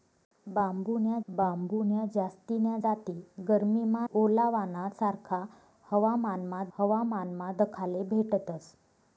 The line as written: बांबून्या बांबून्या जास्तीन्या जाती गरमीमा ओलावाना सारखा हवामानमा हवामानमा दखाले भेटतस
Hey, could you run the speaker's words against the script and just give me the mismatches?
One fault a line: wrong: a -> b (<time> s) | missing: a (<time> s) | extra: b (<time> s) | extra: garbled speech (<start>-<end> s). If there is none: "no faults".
no faults